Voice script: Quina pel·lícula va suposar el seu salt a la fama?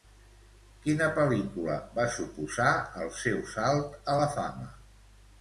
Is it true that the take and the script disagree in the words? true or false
false